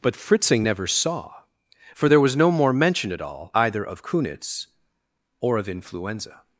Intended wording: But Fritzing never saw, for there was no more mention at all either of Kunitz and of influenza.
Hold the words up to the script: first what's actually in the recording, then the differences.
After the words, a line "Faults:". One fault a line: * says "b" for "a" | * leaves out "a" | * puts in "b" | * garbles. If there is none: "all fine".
But Fritzing never saw, for there was no more mention at all either of Kunitz or of influenza.
Faults:
* says "or" for "and"